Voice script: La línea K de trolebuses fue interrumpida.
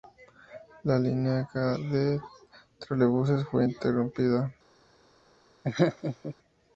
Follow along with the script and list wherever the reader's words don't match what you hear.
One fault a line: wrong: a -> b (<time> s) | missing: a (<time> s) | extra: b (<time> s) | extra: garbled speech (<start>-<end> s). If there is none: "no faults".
no faults